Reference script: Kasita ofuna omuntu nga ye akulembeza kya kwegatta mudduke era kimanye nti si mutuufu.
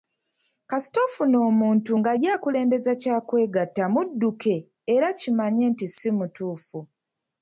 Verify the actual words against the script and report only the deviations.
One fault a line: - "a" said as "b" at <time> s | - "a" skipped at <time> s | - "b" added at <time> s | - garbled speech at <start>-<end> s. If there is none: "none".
none